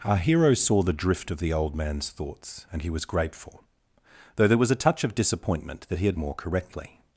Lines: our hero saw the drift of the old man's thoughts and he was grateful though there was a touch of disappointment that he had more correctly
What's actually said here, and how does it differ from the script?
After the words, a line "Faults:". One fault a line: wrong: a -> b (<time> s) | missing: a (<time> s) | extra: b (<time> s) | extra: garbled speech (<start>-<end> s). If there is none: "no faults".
our hero saw the drift of the old man's thoughts and he was grateful though there was a touch of disappointment that he had more correctly
Faults:
no faults